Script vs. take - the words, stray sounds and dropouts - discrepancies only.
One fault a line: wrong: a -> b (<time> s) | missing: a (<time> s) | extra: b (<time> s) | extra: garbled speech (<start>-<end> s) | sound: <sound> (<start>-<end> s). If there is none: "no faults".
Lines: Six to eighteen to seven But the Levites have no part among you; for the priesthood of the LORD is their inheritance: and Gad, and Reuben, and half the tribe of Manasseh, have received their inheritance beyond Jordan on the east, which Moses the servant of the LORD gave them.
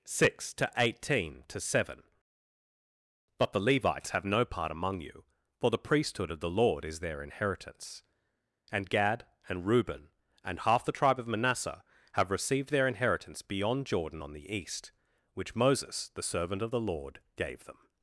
no faults